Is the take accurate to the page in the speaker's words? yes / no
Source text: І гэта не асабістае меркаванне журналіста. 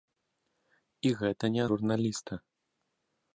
no